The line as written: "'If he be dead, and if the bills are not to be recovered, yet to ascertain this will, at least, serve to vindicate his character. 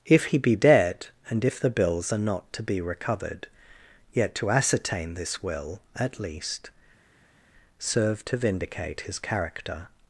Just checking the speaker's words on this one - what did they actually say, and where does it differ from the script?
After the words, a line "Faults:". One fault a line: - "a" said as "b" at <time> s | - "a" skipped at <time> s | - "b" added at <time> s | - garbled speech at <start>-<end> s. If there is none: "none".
"'If he be dead, and if the bills are not to be recovered, yet to ascertain this will, at least, serve to vindicate his character.
Faults:
none